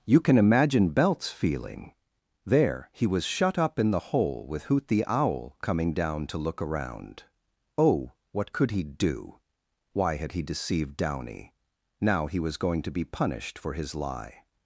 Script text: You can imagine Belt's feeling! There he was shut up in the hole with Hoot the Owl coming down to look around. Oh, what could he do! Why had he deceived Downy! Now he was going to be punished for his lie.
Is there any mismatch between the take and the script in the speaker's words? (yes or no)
no